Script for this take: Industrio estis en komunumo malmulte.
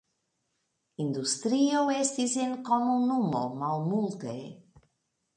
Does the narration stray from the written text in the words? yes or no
no